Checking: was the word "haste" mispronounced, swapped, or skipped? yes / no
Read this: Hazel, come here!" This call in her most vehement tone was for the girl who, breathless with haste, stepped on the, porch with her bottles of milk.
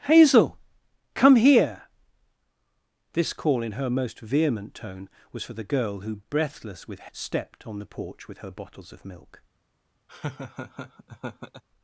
yes